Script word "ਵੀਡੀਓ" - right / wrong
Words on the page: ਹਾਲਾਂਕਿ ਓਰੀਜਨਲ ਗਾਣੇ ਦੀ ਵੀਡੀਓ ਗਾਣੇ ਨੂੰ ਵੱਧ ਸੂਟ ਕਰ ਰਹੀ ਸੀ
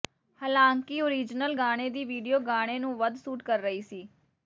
right